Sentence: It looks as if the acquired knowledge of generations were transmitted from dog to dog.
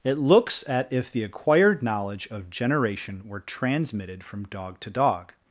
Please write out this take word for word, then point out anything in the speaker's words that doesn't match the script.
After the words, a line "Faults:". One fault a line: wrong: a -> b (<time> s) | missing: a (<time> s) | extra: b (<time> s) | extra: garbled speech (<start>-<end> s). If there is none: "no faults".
It looks at if the acquired knowledge of generation were transmitted from dog to dog.
Faults:
wrong: as -> at (0.7 s)
wrong: generations -> generation (2.5 s)